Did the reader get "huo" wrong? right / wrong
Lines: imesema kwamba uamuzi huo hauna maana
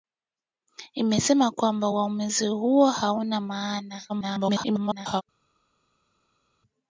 right